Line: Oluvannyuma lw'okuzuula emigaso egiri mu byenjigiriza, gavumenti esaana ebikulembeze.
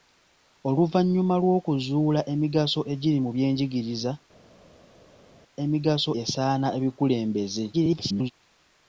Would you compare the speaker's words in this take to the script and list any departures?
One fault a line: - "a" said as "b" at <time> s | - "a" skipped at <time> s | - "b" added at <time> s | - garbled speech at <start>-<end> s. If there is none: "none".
- "gavumenti" said as "emigaso" at 5.6 s
- garbled speech at 7.7-8.3 s